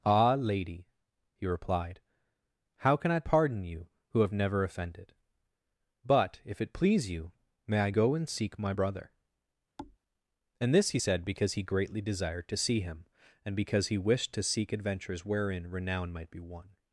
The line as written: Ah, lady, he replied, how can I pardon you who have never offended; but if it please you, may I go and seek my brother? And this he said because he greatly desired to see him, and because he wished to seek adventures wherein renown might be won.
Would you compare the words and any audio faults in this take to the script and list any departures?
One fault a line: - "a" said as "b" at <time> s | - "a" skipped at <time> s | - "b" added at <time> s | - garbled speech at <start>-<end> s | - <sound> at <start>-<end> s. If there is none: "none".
- thud at 9.8-10.0 s